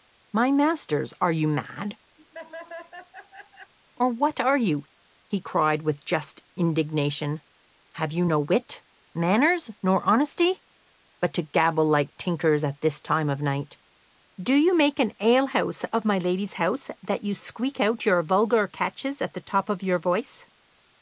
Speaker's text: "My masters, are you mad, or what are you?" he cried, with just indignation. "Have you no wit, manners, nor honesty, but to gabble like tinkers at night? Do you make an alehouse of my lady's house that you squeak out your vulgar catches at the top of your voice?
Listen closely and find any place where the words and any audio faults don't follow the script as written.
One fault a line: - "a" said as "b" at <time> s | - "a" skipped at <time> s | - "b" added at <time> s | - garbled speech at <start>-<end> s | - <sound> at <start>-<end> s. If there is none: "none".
- laugh at 2.2-3.7 s
- "this time of" added at 12.8 s